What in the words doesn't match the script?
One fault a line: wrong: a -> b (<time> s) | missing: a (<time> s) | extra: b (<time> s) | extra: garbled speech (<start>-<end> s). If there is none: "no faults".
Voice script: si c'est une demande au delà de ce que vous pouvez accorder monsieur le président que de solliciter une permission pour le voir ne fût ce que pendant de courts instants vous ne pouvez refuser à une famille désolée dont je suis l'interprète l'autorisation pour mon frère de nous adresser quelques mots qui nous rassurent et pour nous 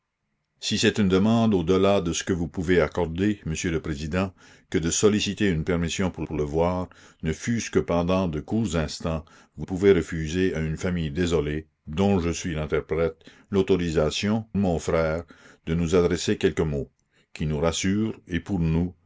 extra: pour (6.2 s)
missing: ne (9.7 s)
missing: pour (14.4 s)